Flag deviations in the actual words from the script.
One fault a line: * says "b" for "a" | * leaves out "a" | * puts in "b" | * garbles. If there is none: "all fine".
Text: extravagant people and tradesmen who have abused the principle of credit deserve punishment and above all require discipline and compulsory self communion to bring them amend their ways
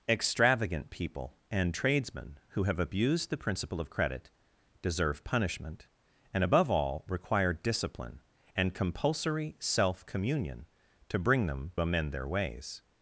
all fine